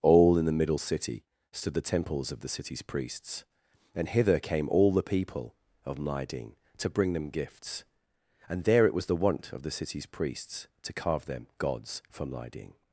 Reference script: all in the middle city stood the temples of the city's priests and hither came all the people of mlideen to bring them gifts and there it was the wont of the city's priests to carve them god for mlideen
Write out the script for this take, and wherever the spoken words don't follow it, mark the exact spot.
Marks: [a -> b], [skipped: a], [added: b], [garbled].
all in the middle city stood the temples of the city's priests and hither came all the people of mlideen to bring them gifts and there it was the wont of the city's priests to carve them [god -> gods] for mlideen